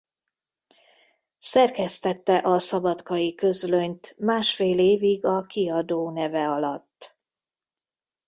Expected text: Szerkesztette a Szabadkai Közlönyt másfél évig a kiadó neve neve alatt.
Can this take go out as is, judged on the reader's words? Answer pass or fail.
fail